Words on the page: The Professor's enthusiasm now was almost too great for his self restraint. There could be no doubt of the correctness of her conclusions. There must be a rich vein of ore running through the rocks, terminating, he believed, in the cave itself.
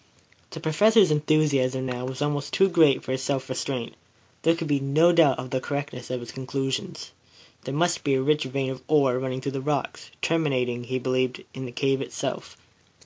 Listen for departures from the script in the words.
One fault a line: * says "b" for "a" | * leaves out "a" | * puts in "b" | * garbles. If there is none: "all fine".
* says "his" for "her"